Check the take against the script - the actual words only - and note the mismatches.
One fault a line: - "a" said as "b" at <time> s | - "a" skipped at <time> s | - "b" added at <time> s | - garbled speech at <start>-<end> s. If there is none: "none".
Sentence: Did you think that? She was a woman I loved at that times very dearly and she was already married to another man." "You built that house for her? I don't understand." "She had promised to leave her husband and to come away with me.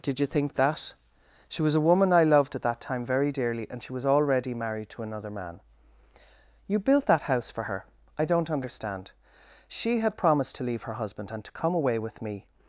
- "times" said as "time" at 2.8 s